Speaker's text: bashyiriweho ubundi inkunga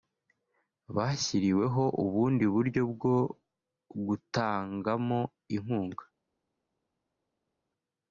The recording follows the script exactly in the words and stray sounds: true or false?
false